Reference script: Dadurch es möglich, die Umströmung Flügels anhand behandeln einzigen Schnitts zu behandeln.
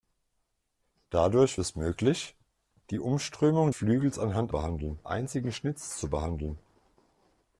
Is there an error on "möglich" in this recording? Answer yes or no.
no